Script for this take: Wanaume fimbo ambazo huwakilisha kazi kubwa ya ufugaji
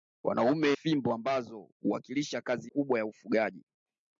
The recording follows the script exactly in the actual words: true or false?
true